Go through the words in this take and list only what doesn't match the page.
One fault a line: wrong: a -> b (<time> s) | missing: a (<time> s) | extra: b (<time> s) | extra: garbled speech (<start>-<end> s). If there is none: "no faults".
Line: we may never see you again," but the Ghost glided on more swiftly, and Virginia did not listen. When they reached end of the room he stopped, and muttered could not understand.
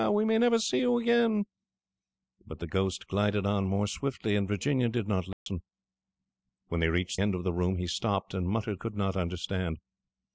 no faults